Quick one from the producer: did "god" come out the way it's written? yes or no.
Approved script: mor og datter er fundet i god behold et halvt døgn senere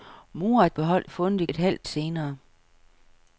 no